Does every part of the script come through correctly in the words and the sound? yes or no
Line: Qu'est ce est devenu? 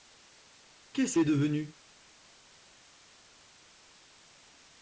yes